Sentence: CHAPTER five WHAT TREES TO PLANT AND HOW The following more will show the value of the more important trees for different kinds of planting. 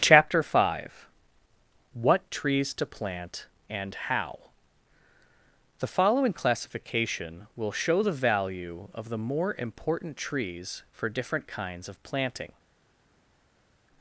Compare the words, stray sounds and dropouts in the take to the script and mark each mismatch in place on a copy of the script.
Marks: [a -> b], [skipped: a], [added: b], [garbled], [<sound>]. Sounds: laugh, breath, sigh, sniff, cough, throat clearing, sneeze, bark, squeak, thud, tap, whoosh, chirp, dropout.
CHAPTER five WHAT TREES TO PLANT AND HOW The following [more -> classification] will show the value of the more important trees for different kinds of planting.